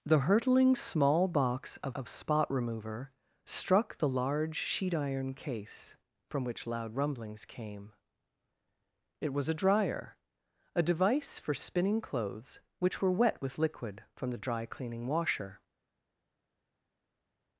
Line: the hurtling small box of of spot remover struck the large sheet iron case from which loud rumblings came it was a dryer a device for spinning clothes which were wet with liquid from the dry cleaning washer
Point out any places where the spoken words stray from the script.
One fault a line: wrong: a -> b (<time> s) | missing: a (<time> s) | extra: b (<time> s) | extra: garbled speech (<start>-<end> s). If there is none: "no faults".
no faults